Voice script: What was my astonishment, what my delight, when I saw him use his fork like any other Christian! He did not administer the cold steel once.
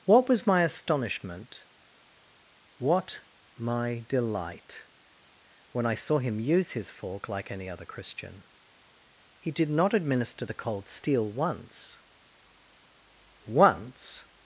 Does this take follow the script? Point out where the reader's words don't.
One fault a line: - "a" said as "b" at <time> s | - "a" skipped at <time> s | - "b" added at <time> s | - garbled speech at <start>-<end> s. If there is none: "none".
- "once" added at 13.4 s